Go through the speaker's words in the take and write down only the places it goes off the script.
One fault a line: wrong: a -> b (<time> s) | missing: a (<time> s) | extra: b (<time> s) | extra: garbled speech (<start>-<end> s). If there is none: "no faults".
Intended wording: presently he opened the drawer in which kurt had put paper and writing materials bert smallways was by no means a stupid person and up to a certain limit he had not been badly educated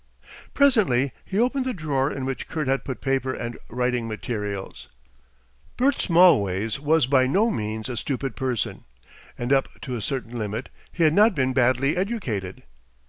no faults